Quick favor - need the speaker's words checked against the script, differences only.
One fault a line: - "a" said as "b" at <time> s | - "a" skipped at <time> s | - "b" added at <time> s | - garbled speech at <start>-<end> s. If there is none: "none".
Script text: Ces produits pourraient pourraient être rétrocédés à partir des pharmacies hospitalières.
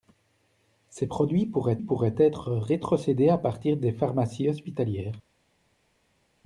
none